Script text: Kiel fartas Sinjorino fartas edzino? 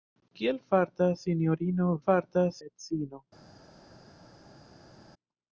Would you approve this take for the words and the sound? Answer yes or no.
yes